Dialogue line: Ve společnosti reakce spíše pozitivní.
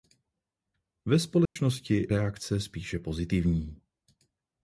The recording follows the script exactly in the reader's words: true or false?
true